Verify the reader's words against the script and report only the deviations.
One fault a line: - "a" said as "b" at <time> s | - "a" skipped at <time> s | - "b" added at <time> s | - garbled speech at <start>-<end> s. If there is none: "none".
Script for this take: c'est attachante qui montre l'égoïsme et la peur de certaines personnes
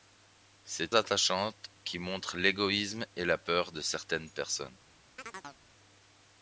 none